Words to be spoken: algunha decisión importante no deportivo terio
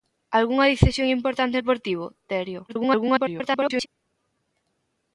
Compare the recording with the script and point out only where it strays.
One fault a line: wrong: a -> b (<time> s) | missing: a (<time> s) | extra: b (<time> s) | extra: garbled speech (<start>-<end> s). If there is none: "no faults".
missing: no (1.6 s)
extra: garbled speech (2.7-3.9 s)